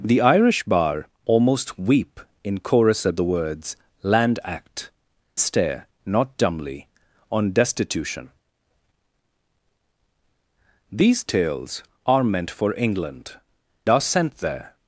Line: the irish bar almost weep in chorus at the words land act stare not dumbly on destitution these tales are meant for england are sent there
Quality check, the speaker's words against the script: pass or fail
pass